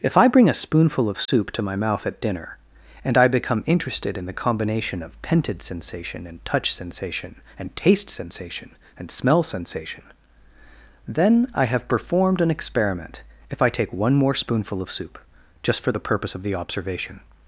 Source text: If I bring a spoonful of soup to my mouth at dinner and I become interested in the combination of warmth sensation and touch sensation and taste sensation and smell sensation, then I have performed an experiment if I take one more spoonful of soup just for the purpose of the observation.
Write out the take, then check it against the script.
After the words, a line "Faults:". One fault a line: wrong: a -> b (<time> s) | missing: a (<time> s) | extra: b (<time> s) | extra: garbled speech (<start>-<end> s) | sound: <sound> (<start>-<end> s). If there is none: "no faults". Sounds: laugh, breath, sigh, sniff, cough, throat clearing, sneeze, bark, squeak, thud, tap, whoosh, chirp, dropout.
If I bring a spoonful of soup to my mouth at dinner and I become interested in the combination of pented sensation and touch sensation and taste sensation and smell sensation, then I have performed an experiment if I take one more spoonful of soup just for the purpose of the observation.
Faults:
sound: dropout (1.3-1.3 s)
wrong: warmth -> pented (5.2 s)